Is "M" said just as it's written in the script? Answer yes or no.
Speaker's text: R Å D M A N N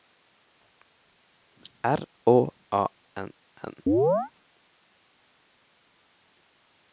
no